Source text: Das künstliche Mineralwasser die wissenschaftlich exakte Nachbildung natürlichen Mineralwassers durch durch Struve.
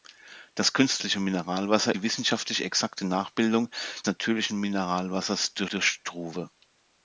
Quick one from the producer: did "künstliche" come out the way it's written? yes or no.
yes